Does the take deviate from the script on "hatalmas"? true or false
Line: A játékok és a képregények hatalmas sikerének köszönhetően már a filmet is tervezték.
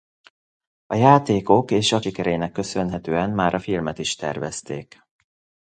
true